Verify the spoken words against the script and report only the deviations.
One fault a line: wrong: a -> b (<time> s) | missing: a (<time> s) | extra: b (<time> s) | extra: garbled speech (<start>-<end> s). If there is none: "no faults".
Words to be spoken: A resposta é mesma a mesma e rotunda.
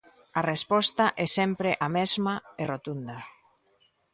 wrong: mesma -> sempre (1.4 s)